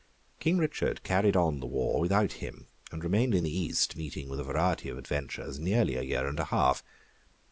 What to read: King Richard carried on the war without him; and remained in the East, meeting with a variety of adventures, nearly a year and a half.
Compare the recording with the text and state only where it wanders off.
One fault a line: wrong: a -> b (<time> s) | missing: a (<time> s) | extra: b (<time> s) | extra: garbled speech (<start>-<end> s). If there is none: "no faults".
no faults